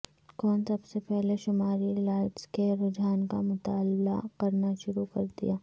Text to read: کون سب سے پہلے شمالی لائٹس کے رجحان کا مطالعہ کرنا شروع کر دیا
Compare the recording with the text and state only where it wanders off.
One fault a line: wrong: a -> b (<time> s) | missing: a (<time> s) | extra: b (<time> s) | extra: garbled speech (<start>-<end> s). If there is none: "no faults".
no faults